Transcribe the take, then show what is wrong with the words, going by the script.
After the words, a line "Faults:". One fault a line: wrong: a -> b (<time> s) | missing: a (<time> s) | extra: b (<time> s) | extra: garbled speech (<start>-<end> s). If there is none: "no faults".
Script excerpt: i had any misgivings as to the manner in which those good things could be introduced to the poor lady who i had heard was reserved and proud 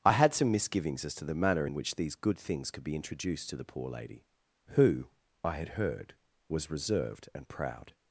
i had some misgivings as to the manner in which these good things could be introduced to the poor lady who i had heard was reserved and proud
Faults:
wrong: any -> some (0.3 s)
wrong: those -> these (1.9 s)